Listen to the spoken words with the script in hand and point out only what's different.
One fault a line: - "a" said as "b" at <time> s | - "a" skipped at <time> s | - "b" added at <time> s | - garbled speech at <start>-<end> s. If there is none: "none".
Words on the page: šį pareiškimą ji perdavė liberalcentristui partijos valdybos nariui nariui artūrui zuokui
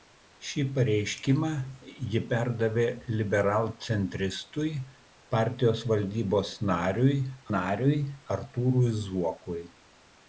none